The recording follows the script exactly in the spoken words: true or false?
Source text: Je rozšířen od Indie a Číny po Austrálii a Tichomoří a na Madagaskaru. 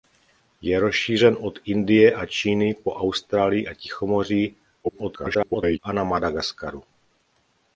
false